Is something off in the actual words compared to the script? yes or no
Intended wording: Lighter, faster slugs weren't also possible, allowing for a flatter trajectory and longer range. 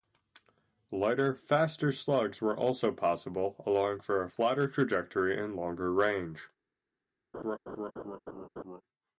yes